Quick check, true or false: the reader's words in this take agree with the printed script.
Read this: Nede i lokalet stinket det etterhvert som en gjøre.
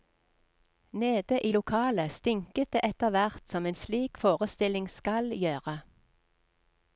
false